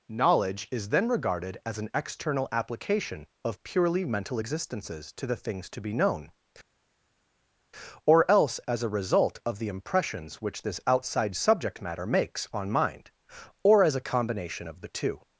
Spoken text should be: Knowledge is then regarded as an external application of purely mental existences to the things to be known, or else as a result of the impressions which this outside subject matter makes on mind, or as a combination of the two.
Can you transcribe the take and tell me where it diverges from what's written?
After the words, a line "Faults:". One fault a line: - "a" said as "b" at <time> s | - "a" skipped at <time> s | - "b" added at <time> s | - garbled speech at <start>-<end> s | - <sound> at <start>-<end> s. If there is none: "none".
Knowledge is then regarded as an external application of purely mental existences to the things to be known, or else as a result of the impressions which this outside subject matter makes on mind, or as a combination of the two.
Faults:
none